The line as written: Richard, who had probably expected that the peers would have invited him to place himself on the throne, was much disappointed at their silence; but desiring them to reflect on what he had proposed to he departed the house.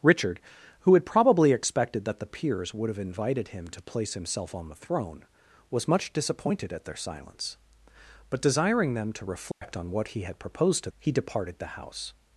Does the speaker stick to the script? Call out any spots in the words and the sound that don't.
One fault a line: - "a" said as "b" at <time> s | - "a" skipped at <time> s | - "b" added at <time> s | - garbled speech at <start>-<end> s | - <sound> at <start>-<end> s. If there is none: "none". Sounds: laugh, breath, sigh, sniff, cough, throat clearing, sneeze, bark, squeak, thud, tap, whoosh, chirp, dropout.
- dropout at 9.5-9.6 s